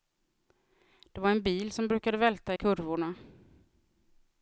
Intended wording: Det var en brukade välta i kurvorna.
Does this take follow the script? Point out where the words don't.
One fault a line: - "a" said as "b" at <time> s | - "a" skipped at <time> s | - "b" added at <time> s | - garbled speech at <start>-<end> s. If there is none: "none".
- "bil som" added at 1.4 s